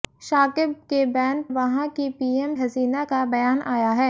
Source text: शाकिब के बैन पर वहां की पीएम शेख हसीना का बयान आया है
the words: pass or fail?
fail